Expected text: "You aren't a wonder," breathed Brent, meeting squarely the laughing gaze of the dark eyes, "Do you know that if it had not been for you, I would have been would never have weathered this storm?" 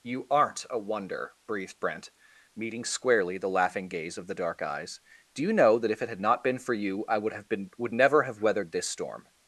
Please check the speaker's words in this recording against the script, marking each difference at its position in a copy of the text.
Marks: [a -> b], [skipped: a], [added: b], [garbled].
"You aren't a wonder," breathed Brent, meeting squarely the laughing gaze of the dark eyes, "Do you know that if it had not been for you, I would have been would never have weathered this storm?"